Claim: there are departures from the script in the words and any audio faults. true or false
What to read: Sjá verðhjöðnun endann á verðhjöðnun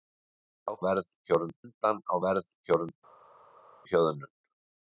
false